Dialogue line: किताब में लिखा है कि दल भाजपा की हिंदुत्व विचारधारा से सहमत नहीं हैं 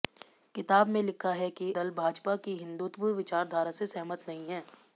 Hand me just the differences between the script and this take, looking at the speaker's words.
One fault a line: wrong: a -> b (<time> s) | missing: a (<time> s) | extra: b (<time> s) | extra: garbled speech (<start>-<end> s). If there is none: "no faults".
no faults